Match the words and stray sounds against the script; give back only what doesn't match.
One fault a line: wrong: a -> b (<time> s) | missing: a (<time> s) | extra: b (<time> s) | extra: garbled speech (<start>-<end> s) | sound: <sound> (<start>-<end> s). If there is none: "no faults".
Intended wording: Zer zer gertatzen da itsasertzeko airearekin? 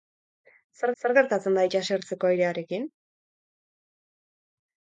no faults